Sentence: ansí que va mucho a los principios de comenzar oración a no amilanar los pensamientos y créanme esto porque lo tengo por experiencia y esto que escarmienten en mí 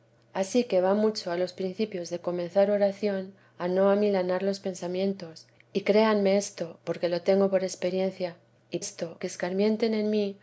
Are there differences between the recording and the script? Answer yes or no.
no